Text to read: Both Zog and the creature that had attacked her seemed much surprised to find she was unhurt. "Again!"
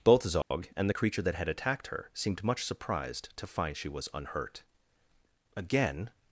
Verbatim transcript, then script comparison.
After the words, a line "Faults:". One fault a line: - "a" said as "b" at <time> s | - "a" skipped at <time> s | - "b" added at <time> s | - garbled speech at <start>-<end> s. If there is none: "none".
Both Zog and the creature that had attacked her seemed much surprised to find she was unhurt. "Again!"
Faults:
none